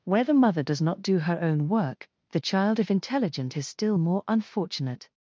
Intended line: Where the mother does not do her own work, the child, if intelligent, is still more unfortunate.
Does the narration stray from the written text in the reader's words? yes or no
no